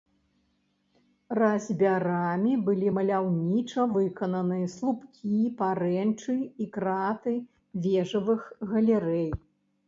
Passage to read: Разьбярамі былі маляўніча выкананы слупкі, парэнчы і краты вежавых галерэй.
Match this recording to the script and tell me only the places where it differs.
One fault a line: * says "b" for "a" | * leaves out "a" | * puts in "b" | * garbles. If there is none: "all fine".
all fine